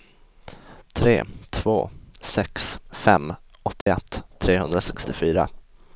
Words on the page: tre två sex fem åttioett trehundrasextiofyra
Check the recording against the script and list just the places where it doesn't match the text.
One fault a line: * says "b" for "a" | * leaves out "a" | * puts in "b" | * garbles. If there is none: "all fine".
all fine